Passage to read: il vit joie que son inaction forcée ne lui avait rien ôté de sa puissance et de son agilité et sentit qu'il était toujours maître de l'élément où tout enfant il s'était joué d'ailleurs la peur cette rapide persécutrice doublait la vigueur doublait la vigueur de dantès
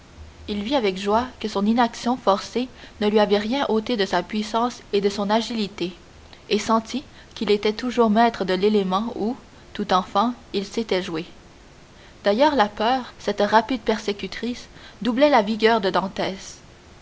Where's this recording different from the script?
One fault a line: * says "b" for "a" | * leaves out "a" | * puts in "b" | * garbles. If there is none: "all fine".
* puts in "avec"
* leaves out "doublait la vigueur"